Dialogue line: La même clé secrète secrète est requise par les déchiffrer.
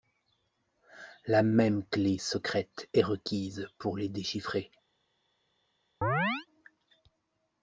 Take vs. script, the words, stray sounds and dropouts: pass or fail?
fail